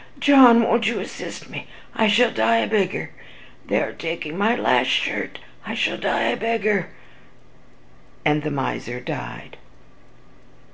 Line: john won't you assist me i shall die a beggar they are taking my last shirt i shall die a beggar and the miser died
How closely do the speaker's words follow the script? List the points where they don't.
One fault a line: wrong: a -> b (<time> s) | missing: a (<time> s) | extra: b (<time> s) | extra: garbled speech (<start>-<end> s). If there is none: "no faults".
no faults